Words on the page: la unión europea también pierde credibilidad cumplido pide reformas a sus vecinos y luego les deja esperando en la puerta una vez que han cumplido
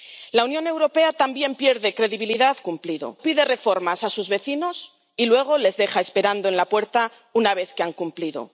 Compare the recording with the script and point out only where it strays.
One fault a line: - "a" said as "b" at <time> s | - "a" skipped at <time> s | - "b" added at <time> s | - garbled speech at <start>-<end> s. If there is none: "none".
none